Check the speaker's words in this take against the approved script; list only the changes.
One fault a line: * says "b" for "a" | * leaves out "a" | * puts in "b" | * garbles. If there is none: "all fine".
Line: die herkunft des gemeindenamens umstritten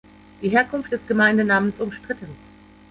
all fine